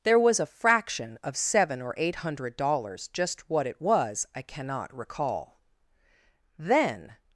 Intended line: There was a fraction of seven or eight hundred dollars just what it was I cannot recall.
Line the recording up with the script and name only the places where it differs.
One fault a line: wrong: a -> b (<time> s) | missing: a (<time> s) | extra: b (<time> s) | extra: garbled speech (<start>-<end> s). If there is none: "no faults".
extra: Then (6.6 s)